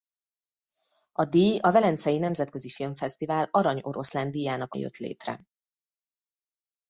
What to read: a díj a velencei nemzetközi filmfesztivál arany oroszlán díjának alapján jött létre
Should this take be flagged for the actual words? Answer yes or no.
yes